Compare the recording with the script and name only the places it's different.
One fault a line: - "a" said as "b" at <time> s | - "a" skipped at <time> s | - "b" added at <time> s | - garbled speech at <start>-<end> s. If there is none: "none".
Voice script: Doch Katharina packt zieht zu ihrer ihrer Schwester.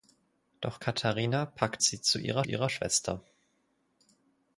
none